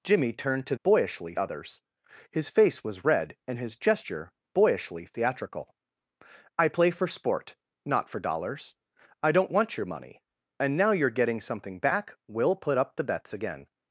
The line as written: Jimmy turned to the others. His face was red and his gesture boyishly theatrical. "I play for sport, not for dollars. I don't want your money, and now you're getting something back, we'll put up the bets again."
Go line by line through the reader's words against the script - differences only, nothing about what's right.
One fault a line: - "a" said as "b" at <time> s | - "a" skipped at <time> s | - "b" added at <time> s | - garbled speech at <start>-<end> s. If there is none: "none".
- "the" said as "boyishly" at 0.8 s